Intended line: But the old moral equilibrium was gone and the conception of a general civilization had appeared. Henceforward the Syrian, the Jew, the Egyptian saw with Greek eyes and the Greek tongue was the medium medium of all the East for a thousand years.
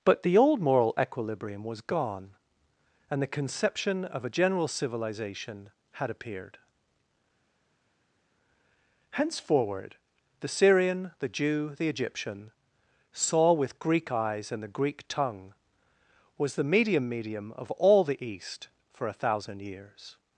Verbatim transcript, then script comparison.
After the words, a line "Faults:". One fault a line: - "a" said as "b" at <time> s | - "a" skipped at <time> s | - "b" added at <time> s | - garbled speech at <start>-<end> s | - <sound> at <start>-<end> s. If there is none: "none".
But the old moral equilibrium was gone and the conception of a general civilization had appeared. Henceforward the Syrian, the Jew, the Egyptian saw with Greek eyes and the Greek tongue was the medium medium of all the East for a thousand years.
Faults:
none